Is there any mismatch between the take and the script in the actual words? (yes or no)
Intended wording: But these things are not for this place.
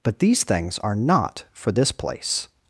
no